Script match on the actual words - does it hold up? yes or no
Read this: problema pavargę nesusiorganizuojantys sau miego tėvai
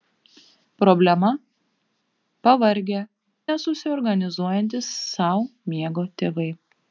yes